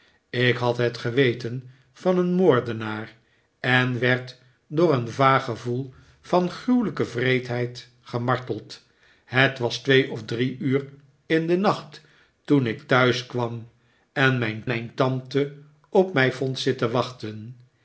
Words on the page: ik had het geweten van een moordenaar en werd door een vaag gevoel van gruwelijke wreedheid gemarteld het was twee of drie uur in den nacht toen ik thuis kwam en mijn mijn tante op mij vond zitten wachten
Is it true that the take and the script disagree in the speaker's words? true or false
false